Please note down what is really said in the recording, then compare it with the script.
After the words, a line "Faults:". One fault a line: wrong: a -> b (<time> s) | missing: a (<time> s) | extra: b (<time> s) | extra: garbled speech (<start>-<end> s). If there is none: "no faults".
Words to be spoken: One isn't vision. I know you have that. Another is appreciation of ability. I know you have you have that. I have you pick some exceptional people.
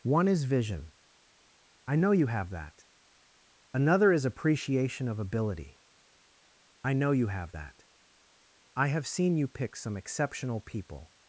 One is vision. I know you have that. Another is appreciation of ability. I know you have that. I have seen you pick some exceptional people.
Faults:
wrong: isn't -> is (0.3 s)
missing: you have (7.5 s)
extra: seen (9.1 s)